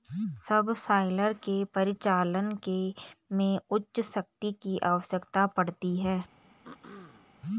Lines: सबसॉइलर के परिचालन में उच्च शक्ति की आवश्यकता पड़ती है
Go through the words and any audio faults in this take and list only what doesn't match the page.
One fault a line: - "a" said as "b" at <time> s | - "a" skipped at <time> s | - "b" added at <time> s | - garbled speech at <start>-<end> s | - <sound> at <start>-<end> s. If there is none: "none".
- throat clearing at 6.6-7.4 s